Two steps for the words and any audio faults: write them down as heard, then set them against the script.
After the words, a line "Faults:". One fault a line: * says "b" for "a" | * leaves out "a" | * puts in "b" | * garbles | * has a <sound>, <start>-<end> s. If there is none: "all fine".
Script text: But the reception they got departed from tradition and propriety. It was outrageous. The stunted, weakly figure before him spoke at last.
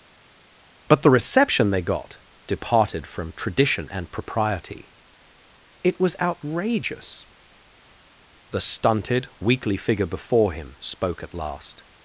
But the reception they got departed from tradition and propriety. It was outrageous. The stunted, weakly figure before him spoke at last.
Faults:
all fine